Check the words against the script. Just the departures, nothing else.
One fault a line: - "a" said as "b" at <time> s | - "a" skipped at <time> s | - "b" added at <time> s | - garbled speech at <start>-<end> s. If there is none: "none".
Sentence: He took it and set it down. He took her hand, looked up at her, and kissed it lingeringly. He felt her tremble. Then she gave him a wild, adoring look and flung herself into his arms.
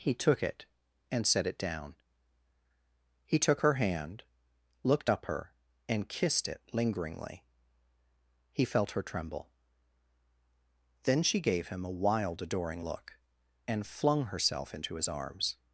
- "at" skipped at 5.2 s